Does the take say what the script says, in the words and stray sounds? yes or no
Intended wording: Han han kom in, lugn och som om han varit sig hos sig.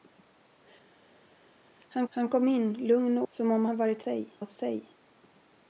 yes